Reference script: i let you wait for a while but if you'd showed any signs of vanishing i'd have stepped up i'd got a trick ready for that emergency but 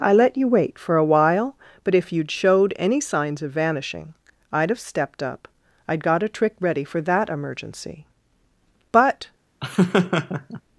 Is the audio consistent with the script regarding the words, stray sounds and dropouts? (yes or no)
no